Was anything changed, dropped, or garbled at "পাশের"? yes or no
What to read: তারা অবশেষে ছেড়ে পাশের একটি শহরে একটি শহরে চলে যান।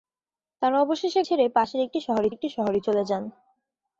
no